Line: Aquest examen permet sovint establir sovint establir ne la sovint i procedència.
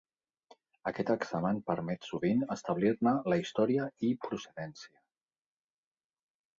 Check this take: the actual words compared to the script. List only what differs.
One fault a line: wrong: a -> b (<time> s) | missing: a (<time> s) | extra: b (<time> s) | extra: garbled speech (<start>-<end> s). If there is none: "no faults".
missing: sovint establir (3.0 s)
wrong: sovint -> història (3.5 s)